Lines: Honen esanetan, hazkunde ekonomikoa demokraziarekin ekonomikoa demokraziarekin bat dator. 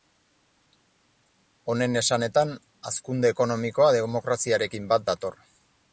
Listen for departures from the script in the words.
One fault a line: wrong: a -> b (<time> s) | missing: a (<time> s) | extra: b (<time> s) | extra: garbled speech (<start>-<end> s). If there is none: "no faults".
missing: ekonomikoa demokraziarekin (4.9 s)